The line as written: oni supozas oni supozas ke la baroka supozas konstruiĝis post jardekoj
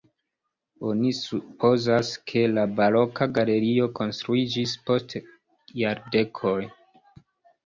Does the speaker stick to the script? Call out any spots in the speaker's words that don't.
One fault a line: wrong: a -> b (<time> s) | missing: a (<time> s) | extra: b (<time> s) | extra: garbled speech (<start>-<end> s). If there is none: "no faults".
missing: oni supozas (2.1 s)
wrong: supozas -> galerio (3.4 s)